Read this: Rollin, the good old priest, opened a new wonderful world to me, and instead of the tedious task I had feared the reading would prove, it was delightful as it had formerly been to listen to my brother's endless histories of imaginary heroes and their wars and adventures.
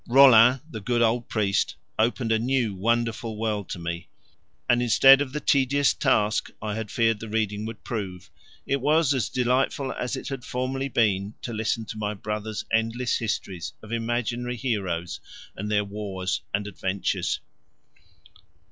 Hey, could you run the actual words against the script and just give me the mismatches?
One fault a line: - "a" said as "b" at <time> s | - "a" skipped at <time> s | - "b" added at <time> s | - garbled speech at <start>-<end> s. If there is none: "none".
- "as" added at 9.1 s